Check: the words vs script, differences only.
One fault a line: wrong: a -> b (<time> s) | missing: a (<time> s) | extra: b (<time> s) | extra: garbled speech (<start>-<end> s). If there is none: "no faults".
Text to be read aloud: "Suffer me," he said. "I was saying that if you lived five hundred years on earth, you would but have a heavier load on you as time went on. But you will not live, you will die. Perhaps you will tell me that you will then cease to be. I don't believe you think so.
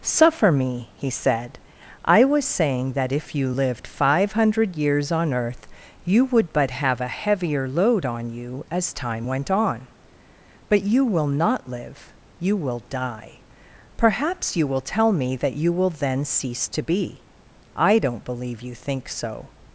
no faults